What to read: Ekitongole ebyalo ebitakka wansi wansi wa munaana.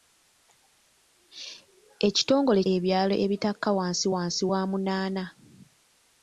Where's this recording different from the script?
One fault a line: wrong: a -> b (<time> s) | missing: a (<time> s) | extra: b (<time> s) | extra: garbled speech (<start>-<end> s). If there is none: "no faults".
no faults